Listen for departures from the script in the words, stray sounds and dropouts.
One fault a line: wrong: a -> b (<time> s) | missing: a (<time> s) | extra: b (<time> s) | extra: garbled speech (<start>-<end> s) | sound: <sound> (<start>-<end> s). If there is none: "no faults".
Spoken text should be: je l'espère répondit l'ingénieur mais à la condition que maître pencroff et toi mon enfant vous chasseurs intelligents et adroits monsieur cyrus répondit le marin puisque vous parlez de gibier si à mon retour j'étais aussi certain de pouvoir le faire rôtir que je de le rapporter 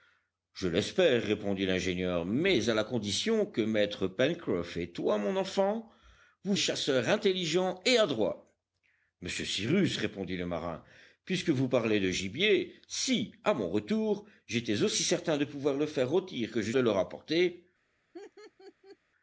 sound: laugh (18.1-19.0 s)